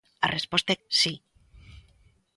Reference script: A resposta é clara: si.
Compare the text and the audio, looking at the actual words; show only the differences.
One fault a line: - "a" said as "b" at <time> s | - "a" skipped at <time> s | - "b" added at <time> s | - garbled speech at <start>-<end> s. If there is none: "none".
- "clara" skipped at 0.8 s